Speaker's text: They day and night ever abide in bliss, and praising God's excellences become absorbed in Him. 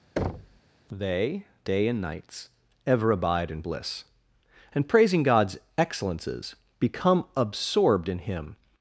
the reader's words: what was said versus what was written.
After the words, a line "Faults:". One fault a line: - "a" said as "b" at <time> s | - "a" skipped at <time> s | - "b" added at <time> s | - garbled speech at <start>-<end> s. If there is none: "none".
They day and nights ever abide in bliss, and praising God's excellences become absorbed in Him.
Faults:
- "night" said as "nights" at 2.0 s